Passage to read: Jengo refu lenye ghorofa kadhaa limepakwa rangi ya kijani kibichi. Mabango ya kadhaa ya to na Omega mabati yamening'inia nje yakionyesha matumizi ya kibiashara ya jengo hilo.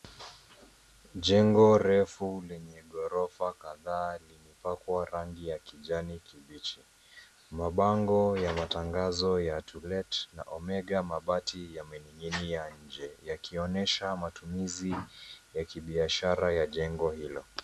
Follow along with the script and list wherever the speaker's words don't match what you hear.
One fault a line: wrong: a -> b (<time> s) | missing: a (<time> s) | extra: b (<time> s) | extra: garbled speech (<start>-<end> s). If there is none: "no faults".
wrong: kadhaa -> matangazo (8.5 s)
extra: let (9.8 s)